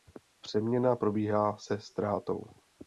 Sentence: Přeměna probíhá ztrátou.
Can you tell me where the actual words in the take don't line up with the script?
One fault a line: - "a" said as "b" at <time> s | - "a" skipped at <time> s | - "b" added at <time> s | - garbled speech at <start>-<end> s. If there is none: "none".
- "se" added at 1.6 s